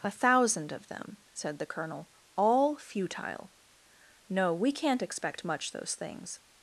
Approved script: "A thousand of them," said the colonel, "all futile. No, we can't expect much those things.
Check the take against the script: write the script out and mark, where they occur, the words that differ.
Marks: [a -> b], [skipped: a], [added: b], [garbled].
"A thousand of them," said the colonel, "all futile. No, we can't expect much those things.